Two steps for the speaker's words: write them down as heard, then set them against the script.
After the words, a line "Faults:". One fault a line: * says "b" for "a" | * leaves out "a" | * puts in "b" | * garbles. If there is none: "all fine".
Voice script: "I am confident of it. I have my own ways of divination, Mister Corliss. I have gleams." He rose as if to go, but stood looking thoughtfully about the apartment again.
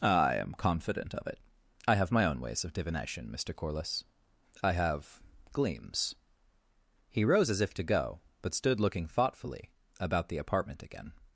"I am confident of it. I have my own ways of divination, Mister Corliss. I have gleams." He rose as if to go, but stood looking thoughtfully about the apartment again.
Faults:
all fine